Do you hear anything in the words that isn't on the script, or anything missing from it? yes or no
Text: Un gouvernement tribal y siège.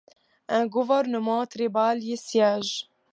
no